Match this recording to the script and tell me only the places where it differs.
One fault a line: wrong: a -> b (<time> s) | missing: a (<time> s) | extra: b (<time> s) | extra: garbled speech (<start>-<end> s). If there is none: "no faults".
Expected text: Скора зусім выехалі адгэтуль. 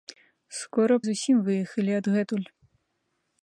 no faults